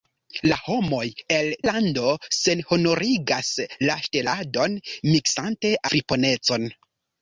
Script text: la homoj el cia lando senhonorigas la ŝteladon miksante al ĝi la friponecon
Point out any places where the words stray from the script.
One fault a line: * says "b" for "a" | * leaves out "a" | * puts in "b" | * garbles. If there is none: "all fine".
* leaves out "cia"
* leaves out "al ĝi la"